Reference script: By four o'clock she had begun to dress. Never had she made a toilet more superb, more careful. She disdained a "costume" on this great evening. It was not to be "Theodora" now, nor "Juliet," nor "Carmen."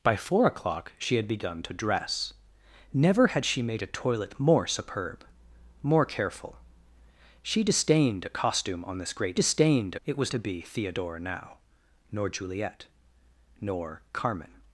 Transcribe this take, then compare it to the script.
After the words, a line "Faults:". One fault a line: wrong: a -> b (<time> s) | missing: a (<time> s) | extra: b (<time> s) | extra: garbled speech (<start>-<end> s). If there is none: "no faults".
By four o'clock she had begun to dress. Never had she made a toilet more superb, more careful. She disdained a "costume" on this great disdained. It was to be "Theodora" now, nor "Juliet," nor "Carmen."
Faults:
wrong: evening -> disdained (9.3 s)
missing: not (10.3 s)